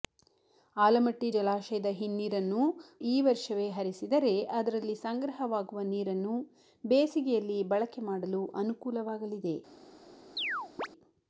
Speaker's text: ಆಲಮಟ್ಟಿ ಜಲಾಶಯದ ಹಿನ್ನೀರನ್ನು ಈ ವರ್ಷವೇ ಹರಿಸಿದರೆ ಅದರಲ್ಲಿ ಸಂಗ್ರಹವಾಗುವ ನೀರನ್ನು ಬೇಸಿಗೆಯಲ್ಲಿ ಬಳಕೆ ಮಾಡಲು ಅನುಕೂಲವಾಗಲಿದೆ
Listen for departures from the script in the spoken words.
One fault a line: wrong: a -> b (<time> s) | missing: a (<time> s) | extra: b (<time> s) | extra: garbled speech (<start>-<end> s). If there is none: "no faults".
no faults